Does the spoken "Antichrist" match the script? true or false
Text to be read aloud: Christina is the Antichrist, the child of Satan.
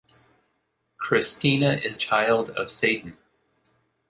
false